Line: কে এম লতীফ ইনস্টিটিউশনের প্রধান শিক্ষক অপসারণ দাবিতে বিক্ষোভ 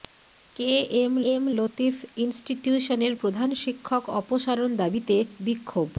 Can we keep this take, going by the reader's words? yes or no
no